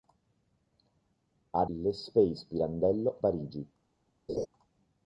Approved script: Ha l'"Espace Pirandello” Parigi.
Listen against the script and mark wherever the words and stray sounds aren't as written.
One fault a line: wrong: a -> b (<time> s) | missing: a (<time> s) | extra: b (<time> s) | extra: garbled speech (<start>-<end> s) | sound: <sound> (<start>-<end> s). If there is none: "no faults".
sound: laugh (4.3-4.5 s)